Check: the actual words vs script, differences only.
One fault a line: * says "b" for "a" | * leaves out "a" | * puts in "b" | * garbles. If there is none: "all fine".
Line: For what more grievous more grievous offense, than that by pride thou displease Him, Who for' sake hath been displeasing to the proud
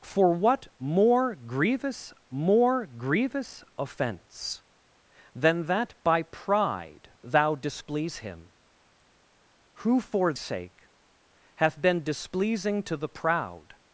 all fine